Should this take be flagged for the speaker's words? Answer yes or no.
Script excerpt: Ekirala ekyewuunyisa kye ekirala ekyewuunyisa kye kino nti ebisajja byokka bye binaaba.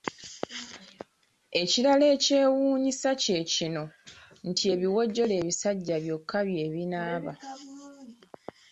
yes